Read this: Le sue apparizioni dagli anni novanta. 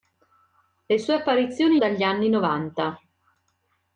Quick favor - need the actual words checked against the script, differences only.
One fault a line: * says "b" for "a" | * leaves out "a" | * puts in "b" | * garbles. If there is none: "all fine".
all fine